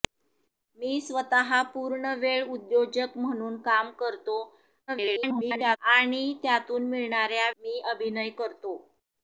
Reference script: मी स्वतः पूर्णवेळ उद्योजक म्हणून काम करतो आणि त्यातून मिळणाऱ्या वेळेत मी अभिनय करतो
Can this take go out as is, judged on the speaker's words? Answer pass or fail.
fail